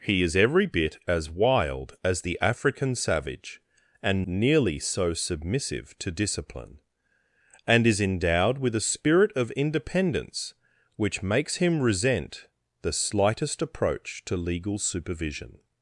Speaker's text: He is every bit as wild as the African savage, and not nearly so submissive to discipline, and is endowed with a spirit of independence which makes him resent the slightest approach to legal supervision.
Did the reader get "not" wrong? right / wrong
wrong